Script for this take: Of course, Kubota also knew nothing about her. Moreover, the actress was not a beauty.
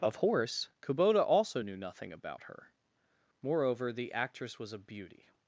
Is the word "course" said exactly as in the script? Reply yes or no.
no